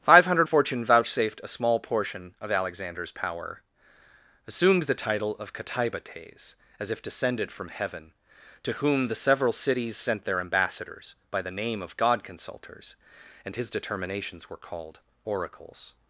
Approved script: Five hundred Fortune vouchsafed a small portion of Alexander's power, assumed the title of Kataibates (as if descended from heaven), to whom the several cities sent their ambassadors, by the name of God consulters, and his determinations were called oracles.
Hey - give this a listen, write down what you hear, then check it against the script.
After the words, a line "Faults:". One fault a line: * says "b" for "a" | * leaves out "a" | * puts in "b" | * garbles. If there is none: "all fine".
Five hundred Fortune vouchsafed a small portion of Alexander's power, assumed the title of Kataibates (as if descended from heaven), to whom the several cities sent their ambassadors, by the name of God consulters, and his determinations were called oracles.
Faults:
all fine